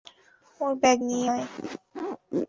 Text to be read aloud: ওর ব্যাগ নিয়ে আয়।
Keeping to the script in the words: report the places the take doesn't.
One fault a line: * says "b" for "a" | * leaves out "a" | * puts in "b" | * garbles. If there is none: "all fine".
all fine